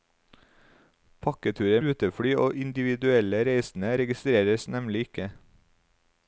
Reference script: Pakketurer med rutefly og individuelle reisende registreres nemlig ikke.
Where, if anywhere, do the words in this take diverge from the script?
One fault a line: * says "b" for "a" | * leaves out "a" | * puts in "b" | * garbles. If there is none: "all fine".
* leaves out "med"